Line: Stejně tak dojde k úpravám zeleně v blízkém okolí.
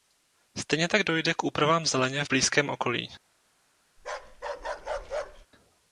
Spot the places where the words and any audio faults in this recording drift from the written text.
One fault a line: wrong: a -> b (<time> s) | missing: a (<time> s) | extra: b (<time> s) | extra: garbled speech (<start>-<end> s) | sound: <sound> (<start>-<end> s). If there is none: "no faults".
sound: bark (4.0-5.5 s)